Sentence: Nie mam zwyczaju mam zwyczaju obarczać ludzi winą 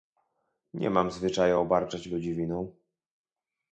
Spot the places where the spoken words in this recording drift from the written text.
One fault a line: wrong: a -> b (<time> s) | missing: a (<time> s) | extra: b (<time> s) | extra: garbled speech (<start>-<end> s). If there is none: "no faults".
missing: mam zwyczaju (1.6 s)